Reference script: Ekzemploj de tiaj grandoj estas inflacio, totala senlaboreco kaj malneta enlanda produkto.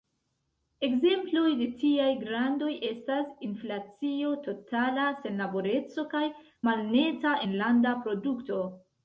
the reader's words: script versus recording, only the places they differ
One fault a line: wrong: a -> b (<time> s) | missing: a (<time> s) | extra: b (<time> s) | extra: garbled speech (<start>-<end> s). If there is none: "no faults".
no faults